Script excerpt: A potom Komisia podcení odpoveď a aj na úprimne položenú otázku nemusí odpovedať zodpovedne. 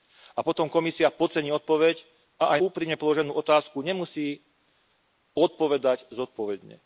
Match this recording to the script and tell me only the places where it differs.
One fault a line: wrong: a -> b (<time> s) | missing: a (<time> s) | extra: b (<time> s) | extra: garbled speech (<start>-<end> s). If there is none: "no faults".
missing: na (2.6 s)